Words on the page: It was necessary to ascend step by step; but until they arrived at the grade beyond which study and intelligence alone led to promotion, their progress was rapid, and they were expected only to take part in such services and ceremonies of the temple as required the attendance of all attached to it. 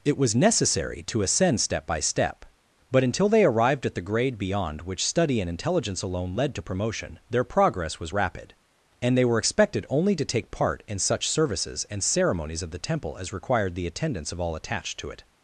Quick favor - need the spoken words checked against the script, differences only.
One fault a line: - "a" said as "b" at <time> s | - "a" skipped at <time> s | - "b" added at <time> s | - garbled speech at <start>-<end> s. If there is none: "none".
none